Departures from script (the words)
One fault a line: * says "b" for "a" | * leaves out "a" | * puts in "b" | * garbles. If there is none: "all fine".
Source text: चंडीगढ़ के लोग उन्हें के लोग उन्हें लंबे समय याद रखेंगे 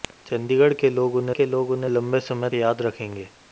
all fine